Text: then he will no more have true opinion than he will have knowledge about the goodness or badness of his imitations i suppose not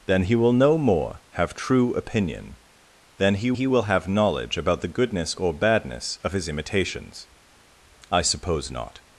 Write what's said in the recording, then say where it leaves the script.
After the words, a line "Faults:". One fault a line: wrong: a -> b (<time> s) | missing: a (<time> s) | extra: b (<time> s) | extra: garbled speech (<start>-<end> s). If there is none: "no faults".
then he will no more have true opinion than he he will have knowledge about the goodness or badness of his imitations i suppose not
Faults:
extra: he (3.5 s)